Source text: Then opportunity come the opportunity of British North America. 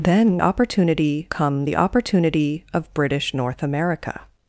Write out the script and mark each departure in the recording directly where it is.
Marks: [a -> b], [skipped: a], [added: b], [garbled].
Then opportunity come the opportunity of British North America.